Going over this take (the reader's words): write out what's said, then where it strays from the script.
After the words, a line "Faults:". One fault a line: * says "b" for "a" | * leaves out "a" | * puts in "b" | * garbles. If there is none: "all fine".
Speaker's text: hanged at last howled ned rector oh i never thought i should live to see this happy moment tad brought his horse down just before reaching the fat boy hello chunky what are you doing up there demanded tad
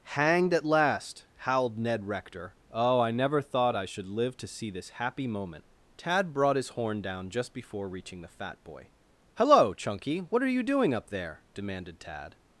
hanged at last howled ned rector oh i never thought i should live to see this happy moment tad brought his horn down just before reaching the fat boy hello chunky what are you doing up there demanded tad
Faults:
* says "horn" for "horse"